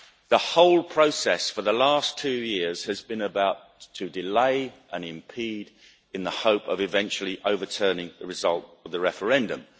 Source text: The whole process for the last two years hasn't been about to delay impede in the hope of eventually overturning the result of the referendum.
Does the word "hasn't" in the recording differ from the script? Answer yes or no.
yes